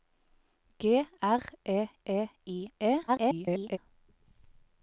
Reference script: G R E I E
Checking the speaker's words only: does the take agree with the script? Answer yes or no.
no